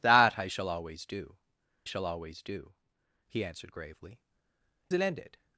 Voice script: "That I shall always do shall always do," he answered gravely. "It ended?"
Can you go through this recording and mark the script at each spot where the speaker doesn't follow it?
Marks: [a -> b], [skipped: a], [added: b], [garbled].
"That I shall always do shall always do," he answered gravely. "It ended?"